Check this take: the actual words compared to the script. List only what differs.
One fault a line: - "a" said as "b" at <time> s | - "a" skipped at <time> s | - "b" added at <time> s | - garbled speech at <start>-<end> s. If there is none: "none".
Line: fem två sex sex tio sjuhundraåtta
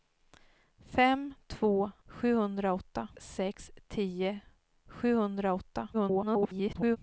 - "sex" said as "sjuhundraåtta" at 2.1 s
- garbled speech at 5.9-7.0 s